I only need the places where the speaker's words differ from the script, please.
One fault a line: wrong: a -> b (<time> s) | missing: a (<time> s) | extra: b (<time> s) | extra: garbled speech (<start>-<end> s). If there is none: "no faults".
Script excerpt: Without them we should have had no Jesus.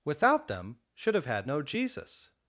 missing: we (0.8 s)